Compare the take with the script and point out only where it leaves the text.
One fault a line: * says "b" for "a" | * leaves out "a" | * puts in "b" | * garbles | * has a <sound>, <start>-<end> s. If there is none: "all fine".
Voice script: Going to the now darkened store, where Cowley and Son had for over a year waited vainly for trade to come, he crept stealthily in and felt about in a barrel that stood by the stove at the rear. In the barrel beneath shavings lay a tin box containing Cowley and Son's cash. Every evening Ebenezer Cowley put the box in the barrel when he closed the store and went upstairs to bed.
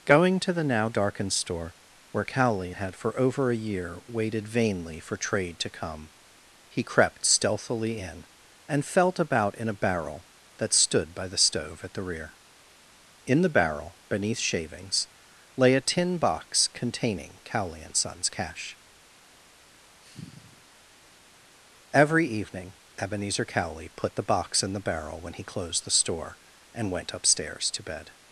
* leaves out "and Son"
* has a sigh, 20.0-20.6 s